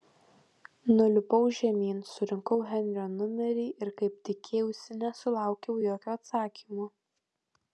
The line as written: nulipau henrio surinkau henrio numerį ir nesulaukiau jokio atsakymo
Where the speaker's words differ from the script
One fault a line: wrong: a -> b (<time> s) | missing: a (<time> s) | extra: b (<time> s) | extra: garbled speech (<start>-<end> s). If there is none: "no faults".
wrong: henrio -> žemyn (1.6 s)
extra: kaip tikėjausi (4.0 s)